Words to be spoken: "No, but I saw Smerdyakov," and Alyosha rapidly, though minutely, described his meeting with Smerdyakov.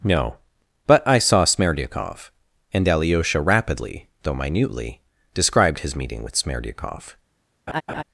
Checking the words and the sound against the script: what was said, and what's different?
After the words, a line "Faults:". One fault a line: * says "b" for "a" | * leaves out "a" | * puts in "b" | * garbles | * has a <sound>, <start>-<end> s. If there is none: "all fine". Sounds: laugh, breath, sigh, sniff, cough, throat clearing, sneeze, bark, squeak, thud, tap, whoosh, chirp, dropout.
"No, but I saw Smerdyakov," and Alyosha rapidly, though minutely, described his meeting with Smerdyakov.
Faults:
* has a laugh, 7.7-8.0 s